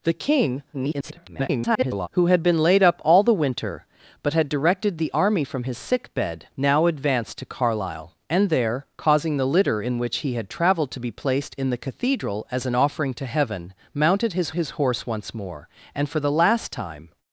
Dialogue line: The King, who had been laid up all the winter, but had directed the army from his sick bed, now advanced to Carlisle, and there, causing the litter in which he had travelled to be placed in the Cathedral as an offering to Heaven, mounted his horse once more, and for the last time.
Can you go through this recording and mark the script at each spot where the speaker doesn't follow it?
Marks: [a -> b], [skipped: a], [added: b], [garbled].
The King, [garbled] who had been laid up all the winter, but had directed the army from his sick bed, now advanced to Carlisle, and there, causing the litter in which he had travelled to be placed in the Cathedral as an offering to Heaven, mounted his [added: his] horse once more, and for the last time.